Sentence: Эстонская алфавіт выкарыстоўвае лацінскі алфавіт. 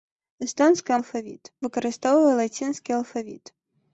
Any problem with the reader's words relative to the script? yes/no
no